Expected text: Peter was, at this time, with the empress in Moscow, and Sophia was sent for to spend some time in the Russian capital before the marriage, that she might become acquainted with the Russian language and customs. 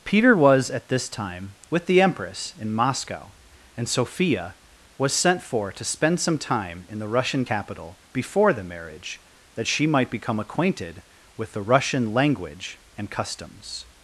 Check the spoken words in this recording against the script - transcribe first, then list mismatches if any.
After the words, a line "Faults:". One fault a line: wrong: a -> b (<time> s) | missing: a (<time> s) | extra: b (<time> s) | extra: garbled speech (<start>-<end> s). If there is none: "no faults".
Peter was, at this time, with the empress in Moscow, and Sophia was sent for to spend some time in the Russian capital before the marriage, that she might become acquainted with the Russian language and customs.
Faults:
no faults